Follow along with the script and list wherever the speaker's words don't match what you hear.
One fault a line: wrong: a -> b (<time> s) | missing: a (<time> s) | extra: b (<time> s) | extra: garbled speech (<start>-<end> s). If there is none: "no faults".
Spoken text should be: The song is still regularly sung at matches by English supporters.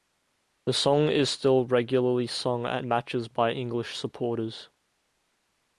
no faults